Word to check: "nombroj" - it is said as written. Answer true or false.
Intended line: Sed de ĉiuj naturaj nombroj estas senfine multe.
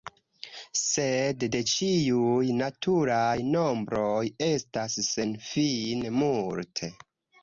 true